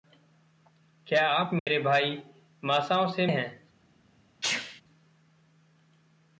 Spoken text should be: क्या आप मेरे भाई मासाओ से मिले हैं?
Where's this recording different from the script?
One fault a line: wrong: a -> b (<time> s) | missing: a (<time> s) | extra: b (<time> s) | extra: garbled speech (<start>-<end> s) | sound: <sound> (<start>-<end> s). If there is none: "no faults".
sound: dropout (1.6-1.7 s)
missing: मिले (3.3 s)
sound: sneeze (4.4-4.8 s)